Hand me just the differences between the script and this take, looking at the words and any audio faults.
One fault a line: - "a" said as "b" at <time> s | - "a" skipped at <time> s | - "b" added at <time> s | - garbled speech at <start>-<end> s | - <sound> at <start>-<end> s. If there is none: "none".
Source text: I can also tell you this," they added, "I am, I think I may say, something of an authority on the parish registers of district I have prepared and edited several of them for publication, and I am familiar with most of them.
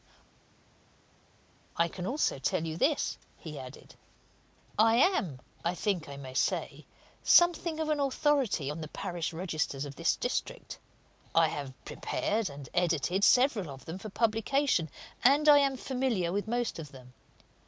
- "they" said as "he" at 3.4 s
- "this" added at 10.0 s